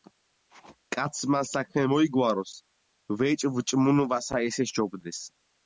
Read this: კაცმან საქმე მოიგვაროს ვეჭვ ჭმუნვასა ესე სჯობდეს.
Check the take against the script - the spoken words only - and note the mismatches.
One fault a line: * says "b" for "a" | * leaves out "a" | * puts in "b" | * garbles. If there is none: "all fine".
all fine